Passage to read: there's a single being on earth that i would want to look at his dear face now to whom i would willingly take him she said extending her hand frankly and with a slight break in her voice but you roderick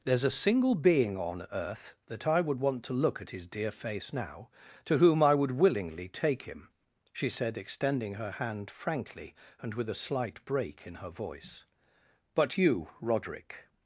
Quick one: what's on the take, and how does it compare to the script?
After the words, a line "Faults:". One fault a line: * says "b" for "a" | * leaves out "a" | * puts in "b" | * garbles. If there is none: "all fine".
there's a single being on earth that i would want to look at his dear face now to whom i would willingly take him she said extending her hand frankly and with a slight break in her voice but you roderick
Faults:
all fine